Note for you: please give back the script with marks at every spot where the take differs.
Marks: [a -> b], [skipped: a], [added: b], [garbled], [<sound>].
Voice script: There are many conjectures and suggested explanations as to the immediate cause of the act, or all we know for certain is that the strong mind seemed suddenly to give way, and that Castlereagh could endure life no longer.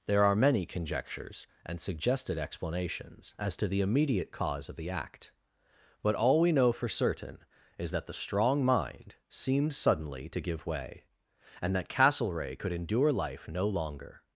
There are many conjectures and suggested explanations as to the immediate cause of the act, [or -> but] all we know for certain is that the strong mind seemed suddenly to give way, and that Castlereagh could endure life no longer.